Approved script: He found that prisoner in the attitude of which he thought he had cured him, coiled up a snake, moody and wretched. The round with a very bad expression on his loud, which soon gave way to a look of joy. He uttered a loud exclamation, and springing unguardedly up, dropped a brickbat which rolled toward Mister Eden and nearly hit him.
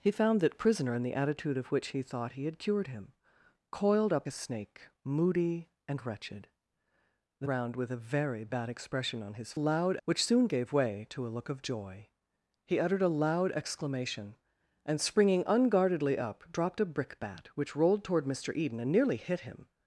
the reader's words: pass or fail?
pass